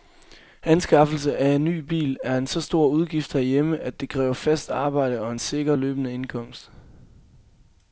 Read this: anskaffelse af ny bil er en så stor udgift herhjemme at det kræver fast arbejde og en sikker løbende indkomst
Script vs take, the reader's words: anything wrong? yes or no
no